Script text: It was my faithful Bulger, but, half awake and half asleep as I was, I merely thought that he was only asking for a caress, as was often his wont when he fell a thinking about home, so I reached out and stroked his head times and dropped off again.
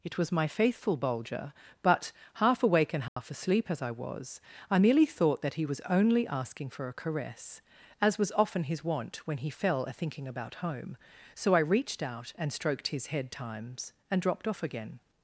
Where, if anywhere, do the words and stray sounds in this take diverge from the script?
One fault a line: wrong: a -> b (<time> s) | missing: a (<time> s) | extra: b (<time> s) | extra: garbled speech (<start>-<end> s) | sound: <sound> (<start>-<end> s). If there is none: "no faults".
sound: dropout (3.1-3.2 s)